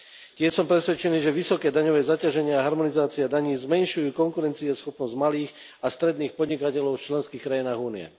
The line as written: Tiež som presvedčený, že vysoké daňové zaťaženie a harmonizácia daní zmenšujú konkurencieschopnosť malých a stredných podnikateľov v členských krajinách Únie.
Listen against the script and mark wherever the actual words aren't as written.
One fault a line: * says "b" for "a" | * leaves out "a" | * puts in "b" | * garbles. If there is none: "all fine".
all fine